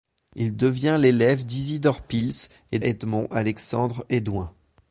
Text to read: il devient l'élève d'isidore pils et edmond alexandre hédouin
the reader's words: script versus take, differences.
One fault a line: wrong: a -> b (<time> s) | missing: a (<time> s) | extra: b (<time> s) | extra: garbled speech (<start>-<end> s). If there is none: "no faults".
no faults